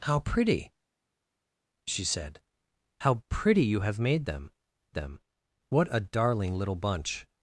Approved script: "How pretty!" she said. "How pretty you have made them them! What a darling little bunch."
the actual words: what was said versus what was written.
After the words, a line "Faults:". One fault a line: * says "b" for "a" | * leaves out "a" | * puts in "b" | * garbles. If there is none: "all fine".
"How pretty!" she said. "How pretty you have made them them! What a darling little bunch."
Faults:
all fine